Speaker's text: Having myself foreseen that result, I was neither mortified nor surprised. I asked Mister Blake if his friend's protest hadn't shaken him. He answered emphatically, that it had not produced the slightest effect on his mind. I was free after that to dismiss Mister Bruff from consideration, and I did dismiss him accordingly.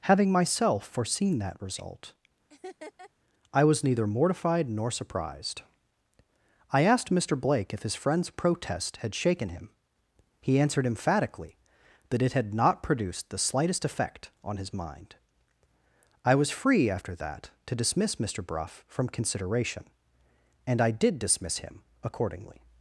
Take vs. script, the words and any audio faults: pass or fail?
fail